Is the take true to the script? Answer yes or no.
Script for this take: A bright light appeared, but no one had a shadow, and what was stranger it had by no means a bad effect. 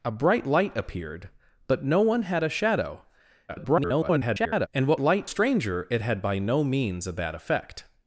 no